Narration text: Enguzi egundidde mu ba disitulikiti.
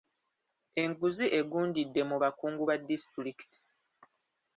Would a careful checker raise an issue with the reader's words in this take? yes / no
yes